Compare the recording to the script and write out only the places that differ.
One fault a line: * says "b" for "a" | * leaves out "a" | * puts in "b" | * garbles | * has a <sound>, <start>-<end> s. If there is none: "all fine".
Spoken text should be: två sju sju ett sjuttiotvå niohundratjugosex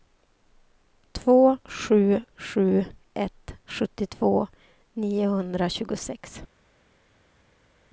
all fine